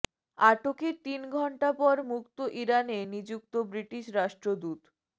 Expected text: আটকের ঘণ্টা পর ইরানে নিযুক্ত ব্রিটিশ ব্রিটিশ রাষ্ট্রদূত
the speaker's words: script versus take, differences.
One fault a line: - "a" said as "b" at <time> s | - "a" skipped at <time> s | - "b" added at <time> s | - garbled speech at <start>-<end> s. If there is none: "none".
- "তিন" added at 1.1 s
- "মুক্ত" added at 2.1 s
- "ব্রিটিশ" skipped at 4.0 s